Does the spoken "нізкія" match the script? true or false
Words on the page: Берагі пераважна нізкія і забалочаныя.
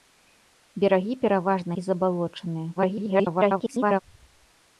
false